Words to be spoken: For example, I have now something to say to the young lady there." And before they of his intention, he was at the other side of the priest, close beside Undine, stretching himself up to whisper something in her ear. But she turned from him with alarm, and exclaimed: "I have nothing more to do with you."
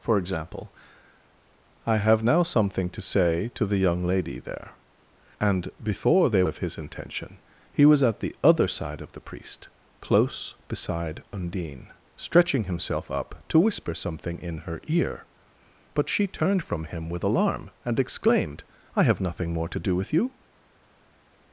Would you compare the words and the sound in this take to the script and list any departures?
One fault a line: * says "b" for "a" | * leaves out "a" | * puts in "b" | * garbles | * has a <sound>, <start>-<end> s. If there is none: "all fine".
all fine